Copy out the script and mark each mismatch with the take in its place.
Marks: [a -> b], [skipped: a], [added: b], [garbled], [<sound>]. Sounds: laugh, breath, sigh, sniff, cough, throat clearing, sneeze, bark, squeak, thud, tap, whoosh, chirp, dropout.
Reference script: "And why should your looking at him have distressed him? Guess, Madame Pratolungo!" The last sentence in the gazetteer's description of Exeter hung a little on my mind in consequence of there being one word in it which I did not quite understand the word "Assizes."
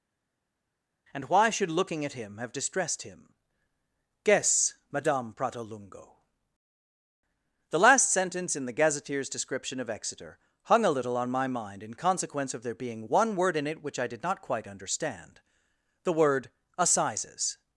"And why should [skipped: your] looking at him have distressed him? Guess, Madame Pratolungo!" The last sentence in the gazetteer's description of Exeter hung a little on my mind in consequence of there being one word in it which I did not quite understand the word "Assizes."